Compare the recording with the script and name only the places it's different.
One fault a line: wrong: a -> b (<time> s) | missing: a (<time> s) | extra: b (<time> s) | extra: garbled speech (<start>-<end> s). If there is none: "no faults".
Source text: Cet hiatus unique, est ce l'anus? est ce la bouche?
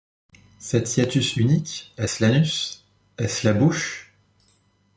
no faults